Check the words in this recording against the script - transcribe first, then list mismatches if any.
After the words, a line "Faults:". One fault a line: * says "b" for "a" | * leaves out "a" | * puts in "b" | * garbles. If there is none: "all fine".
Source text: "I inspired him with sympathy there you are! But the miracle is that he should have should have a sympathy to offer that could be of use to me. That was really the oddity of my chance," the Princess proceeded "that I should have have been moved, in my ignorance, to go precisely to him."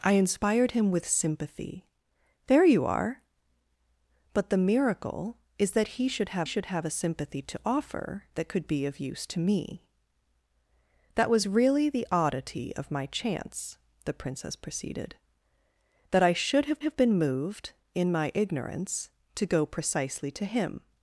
"I inspired him with sympathy there you are! But the miracle is that he should have should have a sympathy to offer that could be of use to me. That was really the oddity of my chance," the Princess proceeded "that I should have have been moved, in my ignorance, to go precisely to him."
Faults:
all fine